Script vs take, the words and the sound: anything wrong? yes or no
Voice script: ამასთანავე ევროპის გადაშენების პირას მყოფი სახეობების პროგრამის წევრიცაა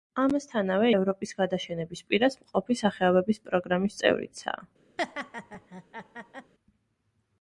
yes